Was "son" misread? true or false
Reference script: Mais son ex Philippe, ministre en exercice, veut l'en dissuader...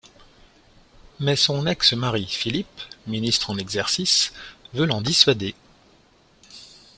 false